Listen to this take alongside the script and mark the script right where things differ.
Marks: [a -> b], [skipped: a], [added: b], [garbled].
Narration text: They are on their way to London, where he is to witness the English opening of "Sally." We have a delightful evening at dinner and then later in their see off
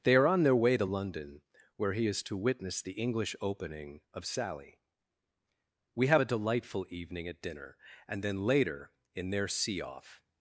They are on their way to London, where he is to witness the English opening of "Sally." We have a delightful evening at dinner and then later in their see off